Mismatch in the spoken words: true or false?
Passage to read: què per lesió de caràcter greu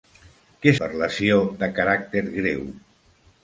false